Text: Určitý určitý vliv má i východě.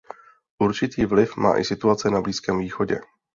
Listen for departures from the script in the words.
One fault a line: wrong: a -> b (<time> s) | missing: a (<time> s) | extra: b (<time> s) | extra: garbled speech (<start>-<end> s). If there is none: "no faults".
missing: určitý (1.1 s)
extra: situace na Blízkém (1.6 s)